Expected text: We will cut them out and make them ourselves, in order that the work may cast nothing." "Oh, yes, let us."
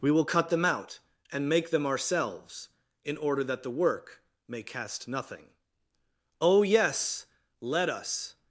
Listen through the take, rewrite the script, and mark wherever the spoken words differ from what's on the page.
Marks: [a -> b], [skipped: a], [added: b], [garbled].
We will cut them out and make them ourselves, in order that the work may cast nothing." "Oh, yes, let us."